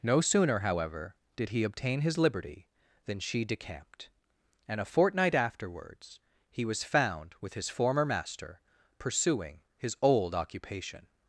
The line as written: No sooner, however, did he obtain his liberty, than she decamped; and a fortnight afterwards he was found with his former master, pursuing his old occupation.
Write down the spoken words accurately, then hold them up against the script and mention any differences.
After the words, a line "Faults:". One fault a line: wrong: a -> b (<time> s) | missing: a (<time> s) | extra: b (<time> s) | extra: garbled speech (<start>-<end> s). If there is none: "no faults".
No sooner, however, did he obtain his liberty, than she decamped; and a fortnight afterwards he was found with his former master, pursuing his old occupation.
Faults:
no faults